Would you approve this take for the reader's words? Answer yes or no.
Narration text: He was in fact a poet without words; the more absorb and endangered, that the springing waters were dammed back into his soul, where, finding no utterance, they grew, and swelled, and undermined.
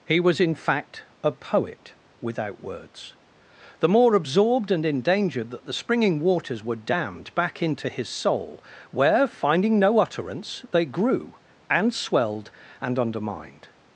no